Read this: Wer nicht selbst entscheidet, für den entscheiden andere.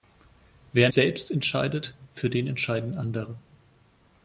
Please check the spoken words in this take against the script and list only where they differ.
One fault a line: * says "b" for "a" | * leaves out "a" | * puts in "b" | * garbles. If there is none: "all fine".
* leaves out "nicht"